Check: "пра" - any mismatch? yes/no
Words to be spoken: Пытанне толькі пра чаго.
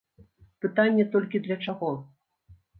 yes